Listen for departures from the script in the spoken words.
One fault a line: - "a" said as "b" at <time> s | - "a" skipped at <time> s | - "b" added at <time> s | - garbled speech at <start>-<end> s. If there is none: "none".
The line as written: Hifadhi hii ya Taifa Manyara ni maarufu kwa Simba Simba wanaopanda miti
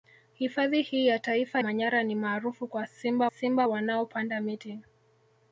none